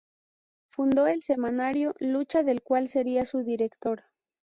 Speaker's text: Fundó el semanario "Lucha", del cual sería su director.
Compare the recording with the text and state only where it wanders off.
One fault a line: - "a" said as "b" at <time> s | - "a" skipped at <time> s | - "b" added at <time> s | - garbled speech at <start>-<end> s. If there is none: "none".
none